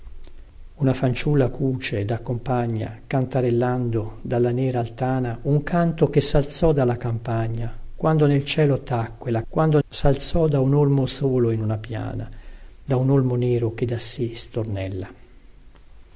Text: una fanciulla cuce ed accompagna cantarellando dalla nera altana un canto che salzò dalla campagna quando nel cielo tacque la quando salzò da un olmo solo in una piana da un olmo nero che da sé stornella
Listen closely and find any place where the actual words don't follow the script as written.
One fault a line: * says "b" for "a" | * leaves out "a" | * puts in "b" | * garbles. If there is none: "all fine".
all fine